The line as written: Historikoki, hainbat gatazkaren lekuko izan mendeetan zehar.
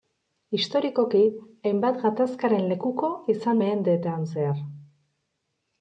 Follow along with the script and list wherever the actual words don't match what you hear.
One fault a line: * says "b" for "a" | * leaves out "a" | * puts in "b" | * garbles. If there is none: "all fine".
all fine